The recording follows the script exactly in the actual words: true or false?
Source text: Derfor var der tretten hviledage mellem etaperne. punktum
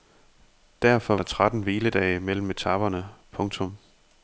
false